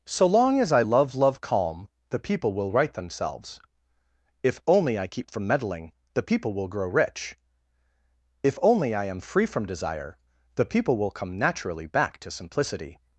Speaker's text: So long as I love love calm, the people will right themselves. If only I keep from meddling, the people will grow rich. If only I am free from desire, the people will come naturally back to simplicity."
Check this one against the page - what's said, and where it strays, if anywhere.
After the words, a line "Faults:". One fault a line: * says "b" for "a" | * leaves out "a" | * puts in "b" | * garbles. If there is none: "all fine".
So long as I love love calm, the people will right themselves. If only I keep from meddling, the people will grow rich. If only I am free from desire, the people will come naturally back to simplicity."
Faults:
all fine